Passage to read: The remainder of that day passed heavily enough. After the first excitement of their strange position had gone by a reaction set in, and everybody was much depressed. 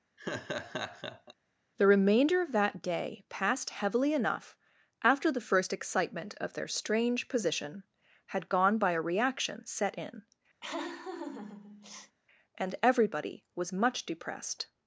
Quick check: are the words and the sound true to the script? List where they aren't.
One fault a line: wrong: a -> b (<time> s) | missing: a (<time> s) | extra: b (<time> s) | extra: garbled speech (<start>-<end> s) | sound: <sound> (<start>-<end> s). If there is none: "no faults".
sound: laugh (0.2-1.3 s)
sound: laugh (10.6-12.2 s)